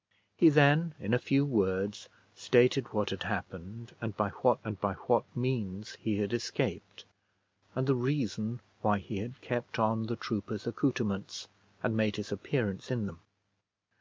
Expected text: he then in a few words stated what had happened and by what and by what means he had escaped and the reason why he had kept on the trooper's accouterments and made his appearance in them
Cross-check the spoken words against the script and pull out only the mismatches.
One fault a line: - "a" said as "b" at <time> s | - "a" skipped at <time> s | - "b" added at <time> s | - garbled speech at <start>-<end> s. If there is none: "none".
none